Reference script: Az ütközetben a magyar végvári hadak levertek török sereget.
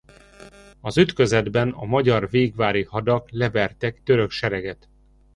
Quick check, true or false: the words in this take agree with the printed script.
true